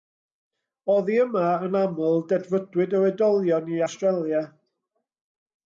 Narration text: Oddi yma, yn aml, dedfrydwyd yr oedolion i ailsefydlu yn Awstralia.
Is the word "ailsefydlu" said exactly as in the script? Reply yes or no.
no